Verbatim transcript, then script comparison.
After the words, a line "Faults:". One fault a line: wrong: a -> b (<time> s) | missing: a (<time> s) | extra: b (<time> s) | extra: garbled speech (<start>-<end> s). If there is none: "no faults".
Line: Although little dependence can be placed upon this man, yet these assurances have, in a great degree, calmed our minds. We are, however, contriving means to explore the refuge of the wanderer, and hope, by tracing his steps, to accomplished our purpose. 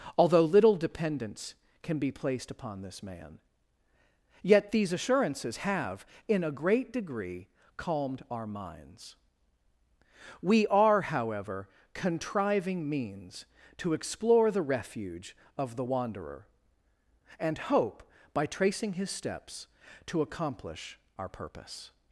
Although little dependence can be placed upon this man, yet these assurances have, in a great degree, calmed our minds. We are, however, contriving means to explore the refuge of the wanderer, and hope, by tracing his steps, to accomplish our purpose.
Faults:
wrong: accomplished -> accomplish (20.2 s)